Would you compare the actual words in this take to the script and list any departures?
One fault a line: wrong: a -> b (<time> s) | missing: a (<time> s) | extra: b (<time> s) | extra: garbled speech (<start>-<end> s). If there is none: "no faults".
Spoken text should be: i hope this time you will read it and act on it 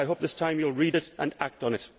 no faults